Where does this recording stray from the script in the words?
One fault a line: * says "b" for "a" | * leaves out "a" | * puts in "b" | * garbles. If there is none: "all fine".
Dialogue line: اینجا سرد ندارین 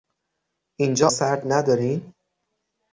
all fine